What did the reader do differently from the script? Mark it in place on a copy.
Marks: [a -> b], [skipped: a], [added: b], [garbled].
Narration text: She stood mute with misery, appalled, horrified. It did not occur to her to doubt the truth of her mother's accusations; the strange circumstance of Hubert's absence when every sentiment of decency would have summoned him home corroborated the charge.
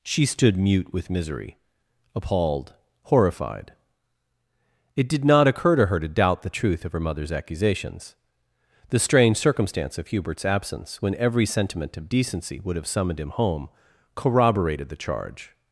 She stood mute with misery, appalled, horrified. It did not occur to her to doubt the truth of her mother's accusations; the strange circumstance of Hubert's absence when every sentiment of decency would have summoned him home corroborated the charge.